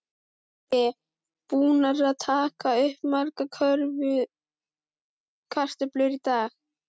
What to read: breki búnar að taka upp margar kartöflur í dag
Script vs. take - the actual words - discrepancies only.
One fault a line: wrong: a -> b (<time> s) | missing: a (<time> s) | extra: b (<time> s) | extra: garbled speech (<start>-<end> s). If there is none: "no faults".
no faults